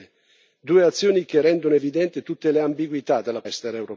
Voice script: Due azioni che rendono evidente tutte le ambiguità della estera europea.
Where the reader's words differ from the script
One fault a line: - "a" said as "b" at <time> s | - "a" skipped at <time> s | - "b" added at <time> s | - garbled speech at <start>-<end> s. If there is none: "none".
none